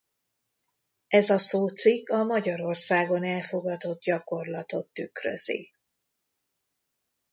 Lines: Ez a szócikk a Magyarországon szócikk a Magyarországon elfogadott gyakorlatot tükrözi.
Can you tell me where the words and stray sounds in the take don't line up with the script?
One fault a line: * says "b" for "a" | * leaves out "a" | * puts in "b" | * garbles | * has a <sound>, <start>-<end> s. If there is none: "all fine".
* leaves out "szócikk a Magyarországon"